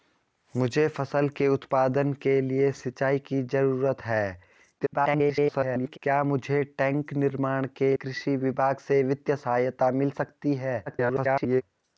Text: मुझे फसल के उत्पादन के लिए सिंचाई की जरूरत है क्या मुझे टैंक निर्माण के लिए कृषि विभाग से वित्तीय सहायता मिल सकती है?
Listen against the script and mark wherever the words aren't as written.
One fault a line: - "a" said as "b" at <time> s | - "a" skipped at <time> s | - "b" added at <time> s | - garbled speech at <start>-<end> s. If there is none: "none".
- garbled speech at 4.8-6.0 s
- "लिए" skipped at 8.0 s
- garbled speech at 10.9-11.6 s